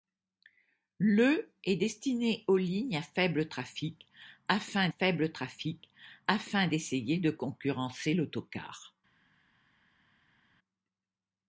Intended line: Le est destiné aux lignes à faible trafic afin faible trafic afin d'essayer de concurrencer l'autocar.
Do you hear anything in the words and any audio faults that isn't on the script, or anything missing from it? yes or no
no